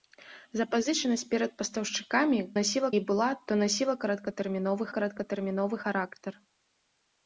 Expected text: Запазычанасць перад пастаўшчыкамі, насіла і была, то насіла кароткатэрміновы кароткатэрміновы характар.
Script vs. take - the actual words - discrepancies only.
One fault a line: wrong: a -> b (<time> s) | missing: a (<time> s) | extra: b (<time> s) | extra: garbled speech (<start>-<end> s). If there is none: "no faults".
no faults